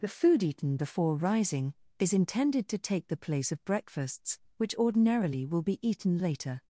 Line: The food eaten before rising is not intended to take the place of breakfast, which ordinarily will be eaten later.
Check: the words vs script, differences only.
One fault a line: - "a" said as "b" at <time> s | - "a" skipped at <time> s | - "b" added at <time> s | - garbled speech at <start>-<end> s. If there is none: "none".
- "not" skipped at 2.1 s
- "breakfast" said as "breakfasts" at 3.6 s